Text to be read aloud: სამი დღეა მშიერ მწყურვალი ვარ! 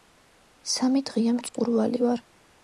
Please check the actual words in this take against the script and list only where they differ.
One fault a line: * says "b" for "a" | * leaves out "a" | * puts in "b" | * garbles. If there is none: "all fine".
* leaves out "მშიერ"